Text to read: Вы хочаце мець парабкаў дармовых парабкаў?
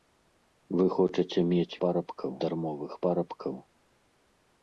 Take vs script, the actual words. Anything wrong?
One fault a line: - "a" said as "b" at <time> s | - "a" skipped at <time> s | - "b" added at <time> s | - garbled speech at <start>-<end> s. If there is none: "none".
none